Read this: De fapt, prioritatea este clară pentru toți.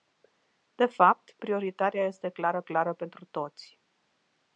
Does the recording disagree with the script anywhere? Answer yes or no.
yes